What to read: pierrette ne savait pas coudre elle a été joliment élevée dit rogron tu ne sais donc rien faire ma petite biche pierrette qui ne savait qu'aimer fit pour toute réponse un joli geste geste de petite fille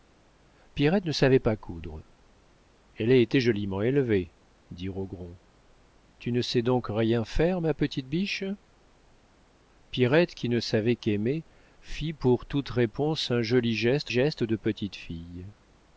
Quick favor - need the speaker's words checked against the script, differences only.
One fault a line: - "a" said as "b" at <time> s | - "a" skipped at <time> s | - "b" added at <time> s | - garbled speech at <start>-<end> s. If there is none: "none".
none